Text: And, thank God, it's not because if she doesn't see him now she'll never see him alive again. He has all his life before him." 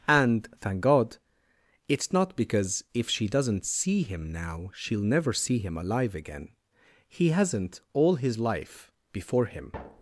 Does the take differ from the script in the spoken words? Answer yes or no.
yes